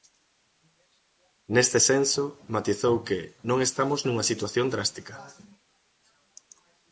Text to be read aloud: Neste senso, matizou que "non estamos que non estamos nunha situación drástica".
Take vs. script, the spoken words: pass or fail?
fail